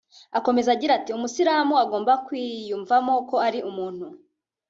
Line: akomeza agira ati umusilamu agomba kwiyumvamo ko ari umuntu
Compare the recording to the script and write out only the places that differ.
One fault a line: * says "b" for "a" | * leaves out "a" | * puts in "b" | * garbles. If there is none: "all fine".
all fine